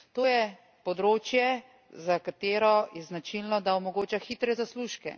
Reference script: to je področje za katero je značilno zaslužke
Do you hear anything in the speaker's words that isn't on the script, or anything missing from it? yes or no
yes